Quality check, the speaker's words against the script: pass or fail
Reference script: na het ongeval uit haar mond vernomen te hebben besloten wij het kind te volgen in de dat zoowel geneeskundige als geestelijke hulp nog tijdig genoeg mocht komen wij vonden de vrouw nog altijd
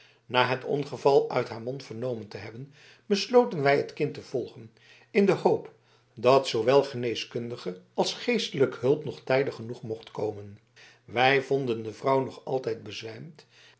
fail